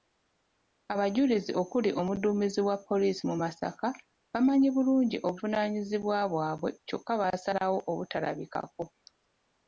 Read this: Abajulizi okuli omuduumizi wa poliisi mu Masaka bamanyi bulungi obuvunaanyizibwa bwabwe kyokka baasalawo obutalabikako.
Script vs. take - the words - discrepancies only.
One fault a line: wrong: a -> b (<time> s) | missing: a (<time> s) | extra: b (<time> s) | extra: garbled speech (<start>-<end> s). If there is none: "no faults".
no faults